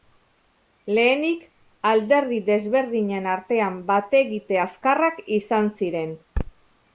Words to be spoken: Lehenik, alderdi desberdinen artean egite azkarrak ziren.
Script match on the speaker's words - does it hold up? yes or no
no